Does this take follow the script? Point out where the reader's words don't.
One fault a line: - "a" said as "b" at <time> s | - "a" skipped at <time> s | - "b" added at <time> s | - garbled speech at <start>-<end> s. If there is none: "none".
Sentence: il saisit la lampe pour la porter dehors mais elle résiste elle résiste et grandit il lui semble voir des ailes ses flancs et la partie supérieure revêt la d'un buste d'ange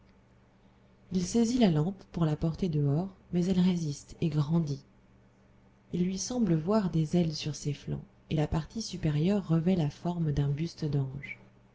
- "elle résiste" skipped at 4.2 s
- "sur" added at 7.3 s
- "forme" added at 9.9 s